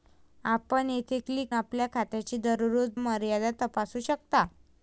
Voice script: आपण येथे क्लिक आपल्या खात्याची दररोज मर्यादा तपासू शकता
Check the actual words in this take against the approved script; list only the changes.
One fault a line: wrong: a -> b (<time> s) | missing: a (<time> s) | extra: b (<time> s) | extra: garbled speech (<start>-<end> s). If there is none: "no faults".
no faults